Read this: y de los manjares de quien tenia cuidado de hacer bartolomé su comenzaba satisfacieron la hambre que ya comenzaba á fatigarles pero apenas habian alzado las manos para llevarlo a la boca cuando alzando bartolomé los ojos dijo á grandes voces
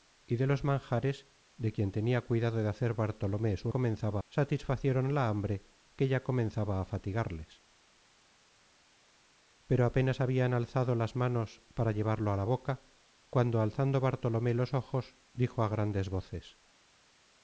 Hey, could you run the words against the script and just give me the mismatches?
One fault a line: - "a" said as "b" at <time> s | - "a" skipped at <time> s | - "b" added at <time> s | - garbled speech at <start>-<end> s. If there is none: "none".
none